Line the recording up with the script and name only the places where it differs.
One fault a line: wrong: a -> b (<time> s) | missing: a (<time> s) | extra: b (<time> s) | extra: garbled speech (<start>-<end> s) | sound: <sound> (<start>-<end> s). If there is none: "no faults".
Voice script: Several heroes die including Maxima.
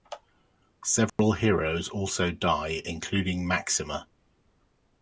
sound: dropout (1.1-1.2 s)
extra: also (1.9 s)